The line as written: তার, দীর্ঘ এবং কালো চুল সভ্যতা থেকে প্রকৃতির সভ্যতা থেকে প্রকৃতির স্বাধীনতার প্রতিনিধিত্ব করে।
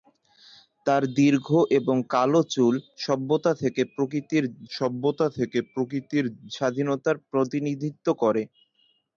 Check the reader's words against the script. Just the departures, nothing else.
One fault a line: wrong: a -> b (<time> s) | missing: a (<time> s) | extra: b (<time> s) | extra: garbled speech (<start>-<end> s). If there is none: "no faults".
no faults